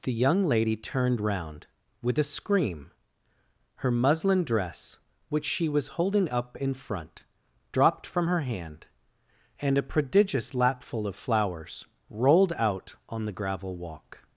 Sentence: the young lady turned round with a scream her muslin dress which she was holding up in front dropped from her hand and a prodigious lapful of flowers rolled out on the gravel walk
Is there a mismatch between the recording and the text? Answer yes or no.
no